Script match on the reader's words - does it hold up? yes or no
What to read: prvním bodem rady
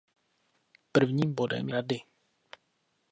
yes